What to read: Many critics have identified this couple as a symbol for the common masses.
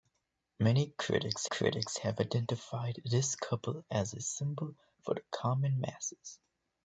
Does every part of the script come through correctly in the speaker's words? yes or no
no